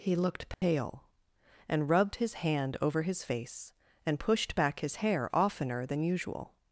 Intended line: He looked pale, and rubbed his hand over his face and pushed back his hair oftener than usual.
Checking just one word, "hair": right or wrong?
right